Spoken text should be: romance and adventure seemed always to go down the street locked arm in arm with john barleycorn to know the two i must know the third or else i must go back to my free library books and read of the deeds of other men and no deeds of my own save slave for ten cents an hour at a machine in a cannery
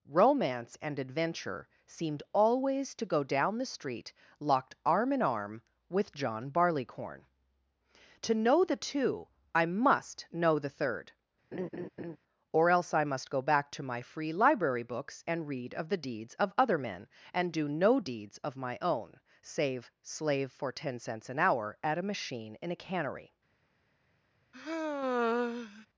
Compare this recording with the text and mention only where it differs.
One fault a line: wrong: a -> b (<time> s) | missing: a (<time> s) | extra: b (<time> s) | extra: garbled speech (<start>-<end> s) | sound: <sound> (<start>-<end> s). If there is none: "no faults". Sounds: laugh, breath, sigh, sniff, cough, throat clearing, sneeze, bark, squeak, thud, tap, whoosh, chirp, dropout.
sound: laugh (11.5-12.2 s)
extra: do (17.5 s)
sound: sigh (24.5-25.9 s)